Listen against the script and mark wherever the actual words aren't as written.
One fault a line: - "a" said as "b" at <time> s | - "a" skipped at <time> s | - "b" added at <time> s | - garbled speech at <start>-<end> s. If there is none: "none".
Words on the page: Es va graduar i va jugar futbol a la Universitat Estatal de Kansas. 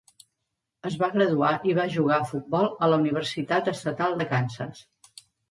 - "a" added at 2.2 s